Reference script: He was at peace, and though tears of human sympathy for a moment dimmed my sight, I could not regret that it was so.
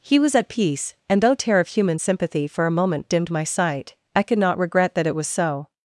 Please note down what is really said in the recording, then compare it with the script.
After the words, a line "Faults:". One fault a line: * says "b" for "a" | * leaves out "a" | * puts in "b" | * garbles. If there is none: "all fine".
He was at peace, and though tear of human sympathy for a moment dimmed my sight, I could not regret that it was so.
Faults:
* says "tear" for "tears"